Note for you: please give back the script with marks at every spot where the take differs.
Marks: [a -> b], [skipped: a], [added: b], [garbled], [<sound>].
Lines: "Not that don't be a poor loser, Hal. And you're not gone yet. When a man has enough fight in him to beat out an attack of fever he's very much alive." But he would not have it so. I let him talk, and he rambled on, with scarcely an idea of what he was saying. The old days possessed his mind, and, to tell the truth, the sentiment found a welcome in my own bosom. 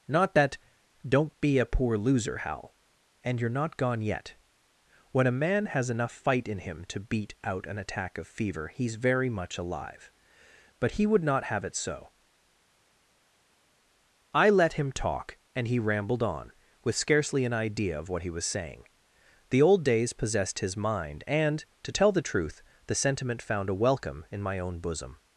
"Not that don't be a poor loser, Hal. And you're not gone yet. When a man has enough fight in him to beat out an attack of fever he's very much alive." But he would not have it so. I let him talk, and he rambled on, with scarcely an idea of what he was saying. The old days possessed his mind, and, to tell the truth, the sentiment found a welcome in my own bosom.